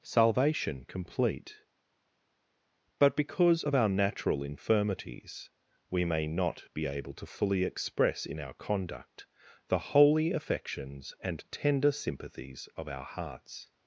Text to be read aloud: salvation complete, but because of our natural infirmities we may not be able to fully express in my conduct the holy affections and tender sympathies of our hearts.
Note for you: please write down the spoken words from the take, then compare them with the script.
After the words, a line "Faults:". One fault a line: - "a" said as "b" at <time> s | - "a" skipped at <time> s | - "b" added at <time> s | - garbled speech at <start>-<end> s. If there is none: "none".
salvation complete, but because of our natural infirmities we may not be able to fully express in our conduct the holy affections and tender sympathies of our hearts.
Faults:
- "my" said as "our" at 8.4 s